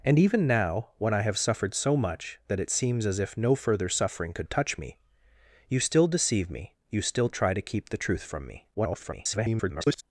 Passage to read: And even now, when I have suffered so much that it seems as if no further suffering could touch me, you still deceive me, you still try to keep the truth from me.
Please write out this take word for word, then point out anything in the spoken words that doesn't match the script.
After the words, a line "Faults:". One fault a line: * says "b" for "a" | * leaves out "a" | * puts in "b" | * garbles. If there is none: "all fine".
And even now, when I have suffered so much that it seems as if no further suffering could touch me, you still deceive me, you still try to keep the truth from me. [garbled]
Faults:
* garbles